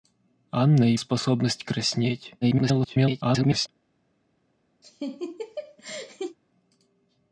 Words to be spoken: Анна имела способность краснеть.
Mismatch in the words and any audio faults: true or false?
true